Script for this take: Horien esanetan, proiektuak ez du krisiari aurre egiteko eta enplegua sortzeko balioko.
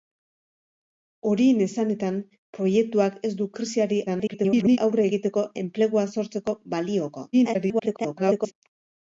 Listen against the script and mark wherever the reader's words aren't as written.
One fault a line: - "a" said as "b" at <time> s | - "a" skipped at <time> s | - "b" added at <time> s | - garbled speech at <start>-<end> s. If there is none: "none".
- garbled speech at 4.1-4.8 s
- "eta" skipped at 5.4 s
- garbled speech at 7.3-8.5 s